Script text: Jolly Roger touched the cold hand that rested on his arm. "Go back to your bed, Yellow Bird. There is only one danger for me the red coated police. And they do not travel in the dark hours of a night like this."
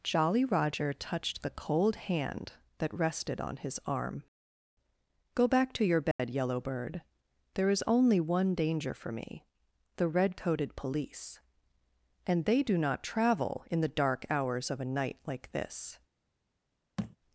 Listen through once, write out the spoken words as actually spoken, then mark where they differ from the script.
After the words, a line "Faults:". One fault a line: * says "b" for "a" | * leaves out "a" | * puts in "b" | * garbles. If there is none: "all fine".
Jolly Roger touched the cold hand that rested on his arm. "Go back to your bed, Yellow Bird. There is only one danger for me the red coated police. And they do not travel in the dark hours of a night like this."
Faults:
all fine